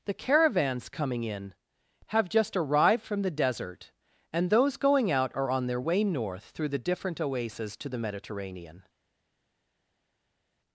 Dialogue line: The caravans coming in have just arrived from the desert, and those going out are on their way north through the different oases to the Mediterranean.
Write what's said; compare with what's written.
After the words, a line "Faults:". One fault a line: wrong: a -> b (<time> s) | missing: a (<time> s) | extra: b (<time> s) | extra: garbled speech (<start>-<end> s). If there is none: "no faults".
The caravans coming in have just arrived from the desert, and those going out are on their way north through the different oases to the Mediterranean.
Faults:
no faults